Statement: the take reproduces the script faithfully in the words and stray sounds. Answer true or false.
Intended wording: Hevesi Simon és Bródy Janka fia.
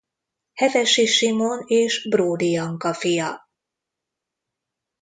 true